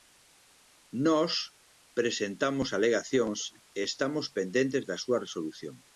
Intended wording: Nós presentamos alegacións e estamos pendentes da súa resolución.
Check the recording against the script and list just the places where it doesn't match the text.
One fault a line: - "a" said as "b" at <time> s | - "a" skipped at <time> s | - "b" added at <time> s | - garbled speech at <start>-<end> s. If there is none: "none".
none